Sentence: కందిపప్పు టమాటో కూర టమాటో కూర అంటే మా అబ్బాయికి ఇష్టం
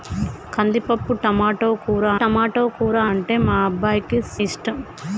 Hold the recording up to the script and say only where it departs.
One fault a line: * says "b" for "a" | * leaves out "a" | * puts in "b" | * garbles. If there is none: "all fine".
all fine